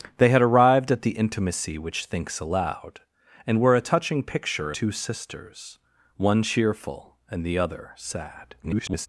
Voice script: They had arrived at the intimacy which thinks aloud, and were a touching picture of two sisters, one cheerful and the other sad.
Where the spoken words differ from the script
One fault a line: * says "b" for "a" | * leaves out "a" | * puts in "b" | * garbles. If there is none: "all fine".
* leaves out "of"
* garbles